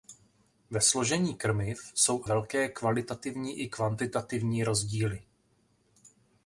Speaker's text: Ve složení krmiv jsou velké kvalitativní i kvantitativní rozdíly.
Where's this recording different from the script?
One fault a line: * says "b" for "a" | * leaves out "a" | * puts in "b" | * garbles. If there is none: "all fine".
all fine